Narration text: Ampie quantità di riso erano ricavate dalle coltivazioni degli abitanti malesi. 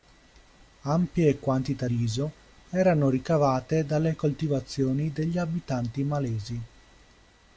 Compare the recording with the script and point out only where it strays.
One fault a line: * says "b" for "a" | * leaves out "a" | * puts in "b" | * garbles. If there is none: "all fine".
* leaves out "di"